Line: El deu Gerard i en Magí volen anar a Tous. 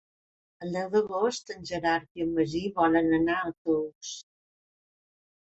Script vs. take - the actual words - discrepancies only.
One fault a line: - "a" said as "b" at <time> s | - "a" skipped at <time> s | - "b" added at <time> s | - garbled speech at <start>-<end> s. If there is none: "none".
- "d'agost en" added at 0.9 s